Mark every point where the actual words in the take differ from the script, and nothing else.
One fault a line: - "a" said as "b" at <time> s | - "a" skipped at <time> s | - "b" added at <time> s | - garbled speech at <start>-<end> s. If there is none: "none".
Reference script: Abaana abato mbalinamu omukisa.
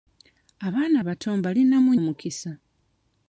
none